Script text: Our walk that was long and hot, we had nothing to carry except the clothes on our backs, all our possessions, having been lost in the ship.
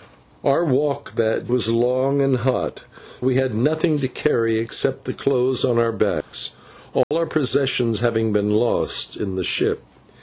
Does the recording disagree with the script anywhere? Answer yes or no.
no